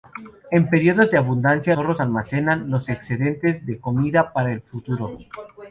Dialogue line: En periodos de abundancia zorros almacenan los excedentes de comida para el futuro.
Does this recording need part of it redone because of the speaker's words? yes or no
no